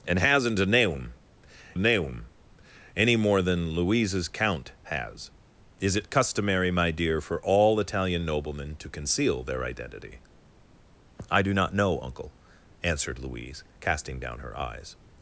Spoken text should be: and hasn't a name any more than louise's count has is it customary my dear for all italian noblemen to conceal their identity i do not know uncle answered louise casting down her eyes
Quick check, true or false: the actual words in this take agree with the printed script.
false